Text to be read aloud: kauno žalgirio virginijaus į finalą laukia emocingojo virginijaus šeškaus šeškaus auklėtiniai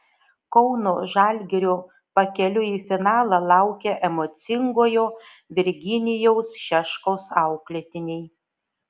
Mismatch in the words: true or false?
true